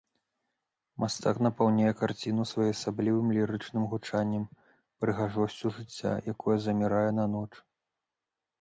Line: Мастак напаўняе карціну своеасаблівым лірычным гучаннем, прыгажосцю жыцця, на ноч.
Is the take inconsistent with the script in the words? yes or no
yes